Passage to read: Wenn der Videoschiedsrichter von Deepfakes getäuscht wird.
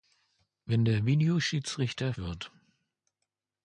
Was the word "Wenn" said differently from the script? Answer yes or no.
no